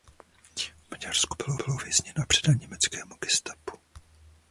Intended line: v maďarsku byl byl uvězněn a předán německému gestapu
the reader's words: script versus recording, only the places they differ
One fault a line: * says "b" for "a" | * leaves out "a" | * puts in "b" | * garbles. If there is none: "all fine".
all fine